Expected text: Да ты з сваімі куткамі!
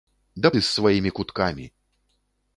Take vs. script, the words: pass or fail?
pass